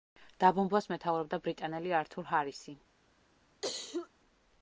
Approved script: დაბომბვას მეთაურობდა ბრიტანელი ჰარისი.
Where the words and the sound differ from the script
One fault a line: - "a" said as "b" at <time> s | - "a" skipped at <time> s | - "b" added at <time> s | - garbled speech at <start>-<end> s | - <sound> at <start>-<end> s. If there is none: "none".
- "ართურ" added at 2.0 s
- cough at 3.6-4.1 s